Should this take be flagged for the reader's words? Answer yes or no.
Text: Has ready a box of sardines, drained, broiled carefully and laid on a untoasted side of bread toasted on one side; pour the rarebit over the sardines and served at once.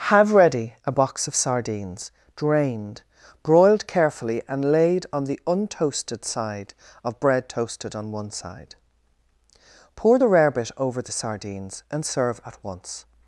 yes